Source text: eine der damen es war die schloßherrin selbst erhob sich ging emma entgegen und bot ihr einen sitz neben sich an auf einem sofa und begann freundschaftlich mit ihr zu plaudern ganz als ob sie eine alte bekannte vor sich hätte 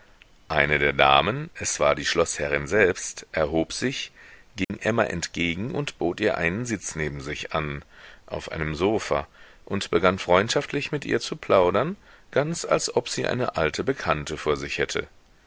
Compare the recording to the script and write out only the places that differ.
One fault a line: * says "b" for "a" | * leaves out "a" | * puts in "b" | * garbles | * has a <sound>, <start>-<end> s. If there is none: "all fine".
* has a dropout, 4.6-4.7 s